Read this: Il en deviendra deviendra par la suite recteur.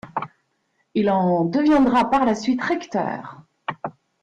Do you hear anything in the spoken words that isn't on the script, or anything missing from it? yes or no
yes